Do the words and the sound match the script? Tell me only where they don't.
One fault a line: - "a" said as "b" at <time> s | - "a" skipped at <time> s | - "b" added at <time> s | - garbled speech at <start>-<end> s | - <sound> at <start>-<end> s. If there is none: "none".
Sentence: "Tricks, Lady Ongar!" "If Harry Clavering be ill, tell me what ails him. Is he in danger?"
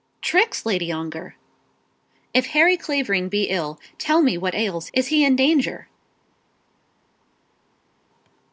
- "him" skipped at 4.9 s